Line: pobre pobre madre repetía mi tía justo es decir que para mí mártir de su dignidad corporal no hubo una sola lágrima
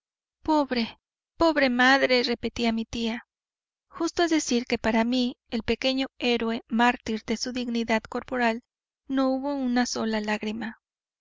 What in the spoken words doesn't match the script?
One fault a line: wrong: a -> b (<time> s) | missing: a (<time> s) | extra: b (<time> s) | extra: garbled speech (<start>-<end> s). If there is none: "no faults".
extra: el pequeño héroe (5.5 s)